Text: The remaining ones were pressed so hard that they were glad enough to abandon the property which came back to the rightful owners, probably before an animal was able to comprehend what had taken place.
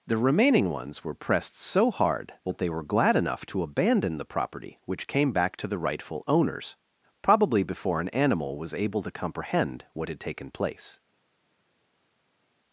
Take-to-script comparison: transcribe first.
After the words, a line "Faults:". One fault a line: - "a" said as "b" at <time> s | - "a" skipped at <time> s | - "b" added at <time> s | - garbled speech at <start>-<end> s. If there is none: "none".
The remaining ones were pressed so hard that they were glad enough to abandon the property which came back to the rightful owners, probably before an animal was able to comprehend what had taken place.
Faults:
none